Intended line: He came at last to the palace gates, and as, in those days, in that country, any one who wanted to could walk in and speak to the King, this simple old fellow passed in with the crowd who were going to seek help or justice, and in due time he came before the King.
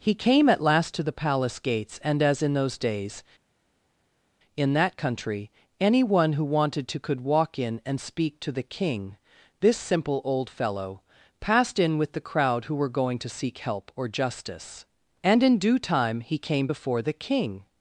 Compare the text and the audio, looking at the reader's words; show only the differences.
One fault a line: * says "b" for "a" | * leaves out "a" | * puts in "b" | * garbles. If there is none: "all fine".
all fine